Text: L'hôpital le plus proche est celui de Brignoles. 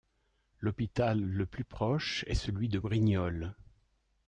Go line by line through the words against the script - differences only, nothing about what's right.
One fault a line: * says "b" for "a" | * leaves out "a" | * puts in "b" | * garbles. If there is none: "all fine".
all fine